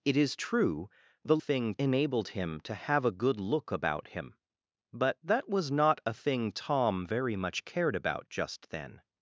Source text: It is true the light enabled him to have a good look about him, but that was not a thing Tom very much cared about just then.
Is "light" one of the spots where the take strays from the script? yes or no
yes